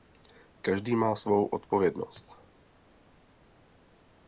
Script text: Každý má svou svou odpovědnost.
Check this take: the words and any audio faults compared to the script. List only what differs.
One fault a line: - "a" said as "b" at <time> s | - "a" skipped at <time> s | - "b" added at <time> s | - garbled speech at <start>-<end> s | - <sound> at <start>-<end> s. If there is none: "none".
- "svou" skipped at 1.4 s